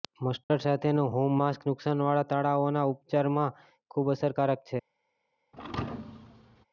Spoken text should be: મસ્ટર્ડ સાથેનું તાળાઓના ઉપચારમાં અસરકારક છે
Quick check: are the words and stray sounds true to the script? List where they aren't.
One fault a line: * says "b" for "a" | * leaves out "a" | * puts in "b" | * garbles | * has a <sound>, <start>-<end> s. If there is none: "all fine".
* has a dropout, 0.4-0.5 s
* puts in "હોમ માસ્ક નુકસાનવાળા"
* puts in "ખૂબ"
* has a thud, 5.5-6.7 s